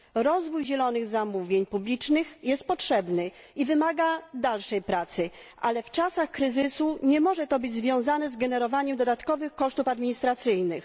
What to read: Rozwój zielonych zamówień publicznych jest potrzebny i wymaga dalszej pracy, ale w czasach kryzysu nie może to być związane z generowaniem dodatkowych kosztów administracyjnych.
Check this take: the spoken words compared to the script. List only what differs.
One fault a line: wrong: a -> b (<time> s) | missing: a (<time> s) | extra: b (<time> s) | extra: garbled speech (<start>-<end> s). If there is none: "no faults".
no faults